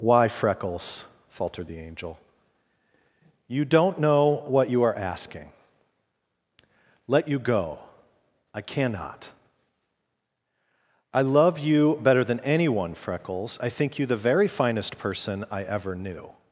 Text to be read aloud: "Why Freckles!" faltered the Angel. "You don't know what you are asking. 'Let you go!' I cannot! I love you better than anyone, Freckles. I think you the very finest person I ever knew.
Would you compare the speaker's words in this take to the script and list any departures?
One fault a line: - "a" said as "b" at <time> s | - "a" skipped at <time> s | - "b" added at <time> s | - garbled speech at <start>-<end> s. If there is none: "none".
none